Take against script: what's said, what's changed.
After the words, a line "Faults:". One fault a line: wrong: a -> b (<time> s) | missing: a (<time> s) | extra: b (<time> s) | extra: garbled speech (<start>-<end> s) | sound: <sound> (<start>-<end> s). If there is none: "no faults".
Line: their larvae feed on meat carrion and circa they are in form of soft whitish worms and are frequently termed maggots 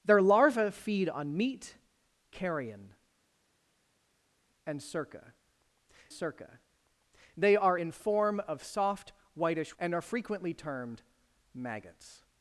their larvae feed on meat carrion and circa circa they are in form of soft whitish and are frequently termed maggots
Faults:
extra: circa (6.1 s)
missing: worms (9.8 s)